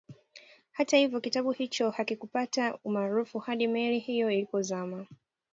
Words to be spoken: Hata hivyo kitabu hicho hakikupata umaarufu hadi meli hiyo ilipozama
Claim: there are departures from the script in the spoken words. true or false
false